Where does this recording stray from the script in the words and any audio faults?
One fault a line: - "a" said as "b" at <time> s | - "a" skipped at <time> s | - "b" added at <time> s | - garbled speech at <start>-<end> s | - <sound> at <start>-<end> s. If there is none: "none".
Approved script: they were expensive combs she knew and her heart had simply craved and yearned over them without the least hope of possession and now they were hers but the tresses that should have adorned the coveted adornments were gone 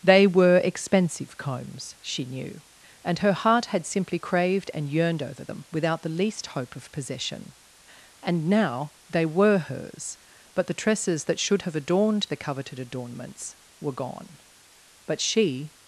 - "but she" added at 15.0 s